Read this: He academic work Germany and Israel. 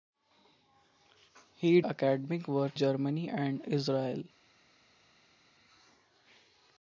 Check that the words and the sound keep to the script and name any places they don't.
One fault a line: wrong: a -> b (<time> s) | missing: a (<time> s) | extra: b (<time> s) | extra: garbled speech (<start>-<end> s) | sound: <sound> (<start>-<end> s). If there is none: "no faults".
no faults